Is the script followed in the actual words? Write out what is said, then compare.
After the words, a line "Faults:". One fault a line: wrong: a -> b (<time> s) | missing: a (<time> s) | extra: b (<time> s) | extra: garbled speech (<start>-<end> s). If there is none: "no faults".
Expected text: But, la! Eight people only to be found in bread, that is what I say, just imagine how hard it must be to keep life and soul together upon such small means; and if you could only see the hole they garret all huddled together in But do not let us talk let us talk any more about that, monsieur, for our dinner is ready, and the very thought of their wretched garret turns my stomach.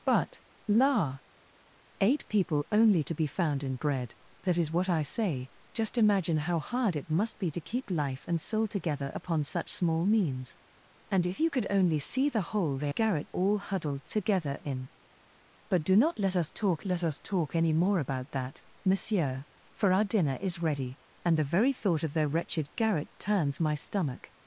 But, la! Eight people only to be found in bread, that is what I say, just imagine how hard it must be to keep life and soul together upon such small means; and if you could only see the hole they garret all huddled together in But do not let us talk let us talk any more about that, monsieur, for our dinner is ready, and the very thought of their wretched garret turns my stomach.
Faults:
no faults